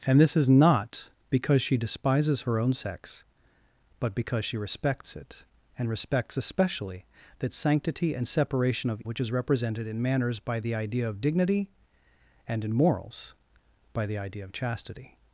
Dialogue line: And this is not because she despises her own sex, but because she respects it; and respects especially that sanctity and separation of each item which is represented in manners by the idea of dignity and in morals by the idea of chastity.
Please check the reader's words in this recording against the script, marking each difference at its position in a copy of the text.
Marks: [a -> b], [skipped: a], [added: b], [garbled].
And this is not because she despises her own sex, but because she respects it; and respects especially that sanctity and separation of [skipped: each item] which is represented in manners by the idea of dignity and in morals by the idea of chastity.